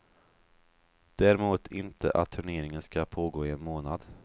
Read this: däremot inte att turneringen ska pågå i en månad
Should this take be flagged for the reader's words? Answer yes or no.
no